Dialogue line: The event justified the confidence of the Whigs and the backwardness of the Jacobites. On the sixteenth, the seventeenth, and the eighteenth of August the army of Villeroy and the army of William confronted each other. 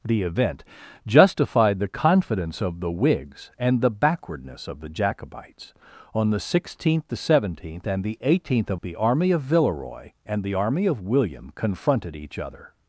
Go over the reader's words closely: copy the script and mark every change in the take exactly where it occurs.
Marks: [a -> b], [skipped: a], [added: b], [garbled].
The event justified the confidence of the Whigs and the backwardness of the Jacobites. On the sixteenth, the seventeenth, and the eighteenth of [skipped: August] the army of Villeroy and the army of William confronted each other.